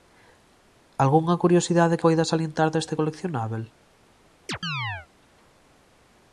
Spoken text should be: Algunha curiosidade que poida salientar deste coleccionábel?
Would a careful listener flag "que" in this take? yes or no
yes